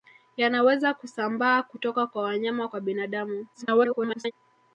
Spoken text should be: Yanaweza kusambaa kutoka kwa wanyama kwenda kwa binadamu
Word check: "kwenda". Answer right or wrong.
wrong